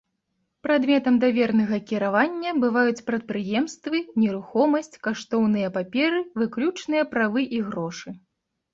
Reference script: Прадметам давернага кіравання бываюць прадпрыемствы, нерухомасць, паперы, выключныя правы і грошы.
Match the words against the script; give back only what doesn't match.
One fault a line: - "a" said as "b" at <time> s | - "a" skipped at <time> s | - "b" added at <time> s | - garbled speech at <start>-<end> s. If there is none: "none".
- "каштоўныя" added at 5.1 s